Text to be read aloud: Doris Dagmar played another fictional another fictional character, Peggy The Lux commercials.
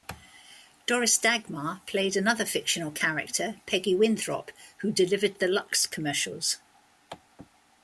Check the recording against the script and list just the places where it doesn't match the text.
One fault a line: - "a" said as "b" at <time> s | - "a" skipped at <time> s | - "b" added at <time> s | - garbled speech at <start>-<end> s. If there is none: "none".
- "another fictional character Peggy" said as "character Peggy Winthrop who delivered" at 2.9 s